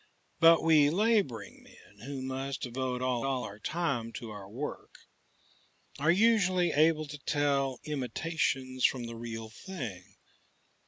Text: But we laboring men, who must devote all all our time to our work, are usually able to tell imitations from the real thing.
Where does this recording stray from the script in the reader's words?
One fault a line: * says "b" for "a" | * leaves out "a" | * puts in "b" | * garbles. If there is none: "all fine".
all fine